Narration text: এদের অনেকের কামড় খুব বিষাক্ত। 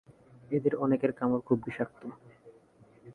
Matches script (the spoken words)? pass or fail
pass